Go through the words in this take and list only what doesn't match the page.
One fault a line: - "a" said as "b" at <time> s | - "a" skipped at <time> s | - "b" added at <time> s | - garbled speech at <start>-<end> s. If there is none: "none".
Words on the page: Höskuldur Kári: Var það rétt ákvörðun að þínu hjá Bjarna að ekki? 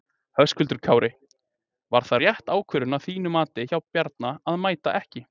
- "mati" added at 3.4 s
- "mæta" added at 4.7 s